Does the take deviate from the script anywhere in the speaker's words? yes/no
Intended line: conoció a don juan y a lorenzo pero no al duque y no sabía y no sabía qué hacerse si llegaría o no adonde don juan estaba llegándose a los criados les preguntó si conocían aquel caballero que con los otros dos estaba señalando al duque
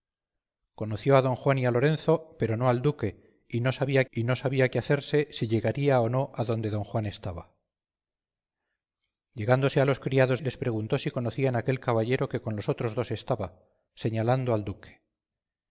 no